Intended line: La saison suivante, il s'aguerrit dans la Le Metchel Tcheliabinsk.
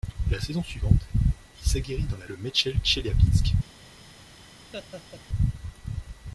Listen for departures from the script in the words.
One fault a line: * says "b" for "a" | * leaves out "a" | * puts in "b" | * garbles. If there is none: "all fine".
all fine